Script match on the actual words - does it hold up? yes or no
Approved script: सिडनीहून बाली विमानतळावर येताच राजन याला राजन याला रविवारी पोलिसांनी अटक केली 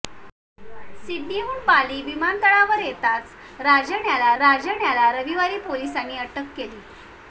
yes